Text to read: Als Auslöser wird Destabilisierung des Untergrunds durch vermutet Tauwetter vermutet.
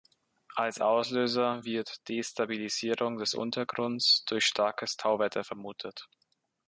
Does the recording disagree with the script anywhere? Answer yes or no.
yes